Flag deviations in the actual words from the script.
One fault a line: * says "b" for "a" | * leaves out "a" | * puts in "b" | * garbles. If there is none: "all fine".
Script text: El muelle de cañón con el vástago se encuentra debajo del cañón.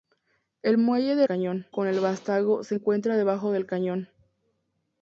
all fine